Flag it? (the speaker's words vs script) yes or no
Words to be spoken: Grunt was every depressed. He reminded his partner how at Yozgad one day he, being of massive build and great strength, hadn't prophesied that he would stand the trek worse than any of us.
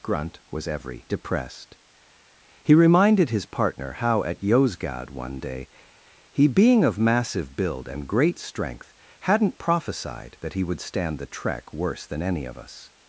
no